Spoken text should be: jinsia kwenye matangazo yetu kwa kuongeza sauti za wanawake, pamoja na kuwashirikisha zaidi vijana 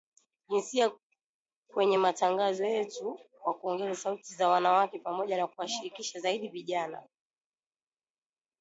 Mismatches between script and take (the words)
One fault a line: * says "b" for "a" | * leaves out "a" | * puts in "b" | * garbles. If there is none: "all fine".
all fine